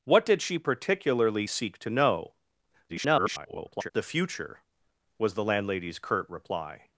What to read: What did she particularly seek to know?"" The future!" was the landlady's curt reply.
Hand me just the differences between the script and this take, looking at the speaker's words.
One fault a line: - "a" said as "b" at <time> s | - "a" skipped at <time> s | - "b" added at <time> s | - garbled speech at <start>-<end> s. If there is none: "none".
- garbled speech at 2.9-3.9 s